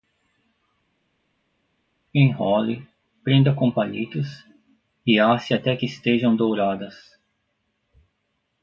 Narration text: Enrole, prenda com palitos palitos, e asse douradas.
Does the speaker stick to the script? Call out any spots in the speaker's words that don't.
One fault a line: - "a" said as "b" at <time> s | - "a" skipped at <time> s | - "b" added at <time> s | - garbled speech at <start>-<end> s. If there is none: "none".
- "palitos" skipped at 4.3 s
- "até que estejam" added at 5.5 s